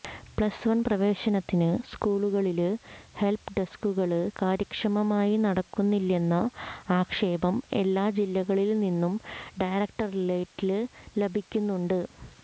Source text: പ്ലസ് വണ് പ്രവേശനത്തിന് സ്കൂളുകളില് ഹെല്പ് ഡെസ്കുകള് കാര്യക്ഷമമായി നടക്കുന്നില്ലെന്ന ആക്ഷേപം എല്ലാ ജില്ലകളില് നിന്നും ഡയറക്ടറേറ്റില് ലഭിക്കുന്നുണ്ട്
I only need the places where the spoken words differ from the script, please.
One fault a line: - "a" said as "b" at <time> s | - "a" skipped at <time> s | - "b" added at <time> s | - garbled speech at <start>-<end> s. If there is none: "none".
none